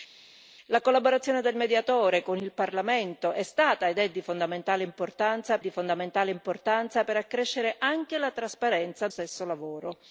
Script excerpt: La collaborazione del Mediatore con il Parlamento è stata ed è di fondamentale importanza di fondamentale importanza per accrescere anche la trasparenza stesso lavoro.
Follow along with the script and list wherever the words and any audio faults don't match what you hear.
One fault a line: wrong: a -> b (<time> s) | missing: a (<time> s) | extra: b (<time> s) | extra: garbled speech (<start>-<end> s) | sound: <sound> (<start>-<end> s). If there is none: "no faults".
no faults